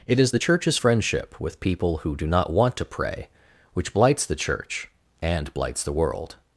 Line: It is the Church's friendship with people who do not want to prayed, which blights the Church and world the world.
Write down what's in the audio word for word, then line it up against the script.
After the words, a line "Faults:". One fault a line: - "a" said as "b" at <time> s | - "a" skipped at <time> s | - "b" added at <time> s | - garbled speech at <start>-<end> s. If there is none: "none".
It is the Church's friendship with people who do not want to pray, which blights the Church and blights the world.
Faults:
- "prayed" said as "pray" at 2.8 s
- "world" said as "blights" at 5.5 s